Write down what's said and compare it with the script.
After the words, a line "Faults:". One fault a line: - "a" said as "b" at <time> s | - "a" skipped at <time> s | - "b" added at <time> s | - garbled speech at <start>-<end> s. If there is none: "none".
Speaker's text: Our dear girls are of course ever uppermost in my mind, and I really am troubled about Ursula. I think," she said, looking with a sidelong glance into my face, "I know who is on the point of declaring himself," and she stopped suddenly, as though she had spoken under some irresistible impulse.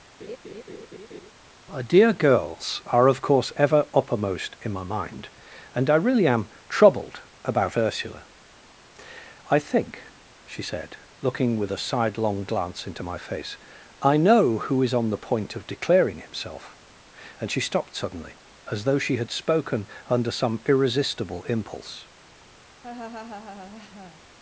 Our dear girls are of course ever uppermost in my mind, and I really am troubled about Ursula. I think," she said, looking with a sidelong glance into my face, "I know who is on the point of declaring himself," and she stopped suddenly, as though she had spoken under some irresistible impulse.
Faults:
none